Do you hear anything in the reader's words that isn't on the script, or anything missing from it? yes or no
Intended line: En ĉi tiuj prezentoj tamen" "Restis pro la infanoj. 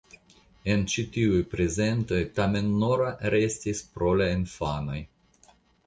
yes